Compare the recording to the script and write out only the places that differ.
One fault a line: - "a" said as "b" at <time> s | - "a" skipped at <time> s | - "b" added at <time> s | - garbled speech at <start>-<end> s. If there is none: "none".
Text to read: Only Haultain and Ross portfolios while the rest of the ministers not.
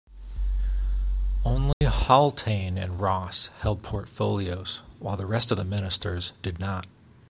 - "held" added at 3.6 s
- "did" added at 6.4 s